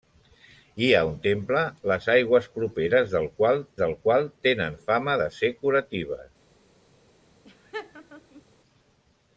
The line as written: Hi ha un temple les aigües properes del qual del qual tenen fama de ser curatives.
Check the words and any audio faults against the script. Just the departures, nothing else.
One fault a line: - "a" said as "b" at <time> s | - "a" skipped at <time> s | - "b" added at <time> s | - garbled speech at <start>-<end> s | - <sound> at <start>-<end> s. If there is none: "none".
- laugh at 7.4-8.4 s